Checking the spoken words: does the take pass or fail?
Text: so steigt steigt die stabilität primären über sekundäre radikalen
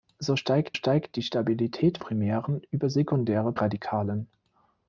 pass